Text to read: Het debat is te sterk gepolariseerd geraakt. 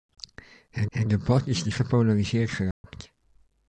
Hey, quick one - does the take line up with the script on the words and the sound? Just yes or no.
no